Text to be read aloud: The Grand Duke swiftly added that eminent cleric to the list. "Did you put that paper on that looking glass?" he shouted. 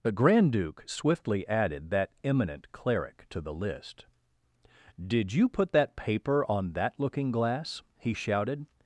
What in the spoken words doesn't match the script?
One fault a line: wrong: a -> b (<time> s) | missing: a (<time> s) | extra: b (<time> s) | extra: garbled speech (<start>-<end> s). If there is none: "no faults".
no faults